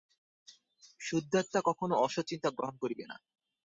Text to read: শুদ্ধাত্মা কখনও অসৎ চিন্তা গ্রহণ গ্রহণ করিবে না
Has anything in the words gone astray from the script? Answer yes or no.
yes